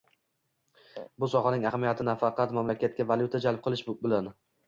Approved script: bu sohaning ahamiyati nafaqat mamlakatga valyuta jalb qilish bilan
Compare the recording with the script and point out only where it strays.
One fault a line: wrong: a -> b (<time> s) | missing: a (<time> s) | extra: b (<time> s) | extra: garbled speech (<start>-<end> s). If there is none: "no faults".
no faults